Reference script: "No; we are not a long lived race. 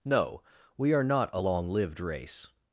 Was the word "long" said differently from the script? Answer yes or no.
no